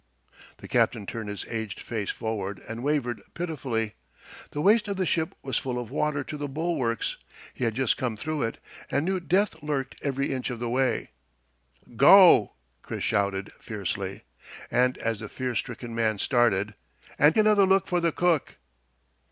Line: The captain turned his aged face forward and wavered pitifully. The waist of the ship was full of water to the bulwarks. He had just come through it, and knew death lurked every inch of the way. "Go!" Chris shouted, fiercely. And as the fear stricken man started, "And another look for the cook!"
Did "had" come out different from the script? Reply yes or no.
no